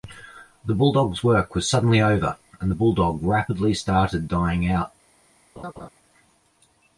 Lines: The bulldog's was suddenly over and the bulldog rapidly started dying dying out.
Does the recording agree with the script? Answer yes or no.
no